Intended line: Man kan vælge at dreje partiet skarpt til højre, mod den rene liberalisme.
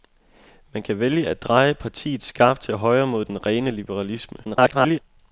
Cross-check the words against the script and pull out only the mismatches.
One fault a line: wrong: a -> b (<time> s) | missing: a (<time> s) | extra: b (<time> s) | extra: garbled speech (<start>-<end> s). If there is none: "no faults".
extra: garbled speech (4.4-5.0 s)